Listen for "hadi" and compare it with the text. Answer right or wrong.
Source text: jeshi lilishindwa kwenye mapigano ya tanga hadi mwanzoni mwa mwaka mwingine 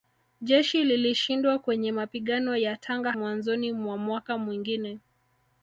wrong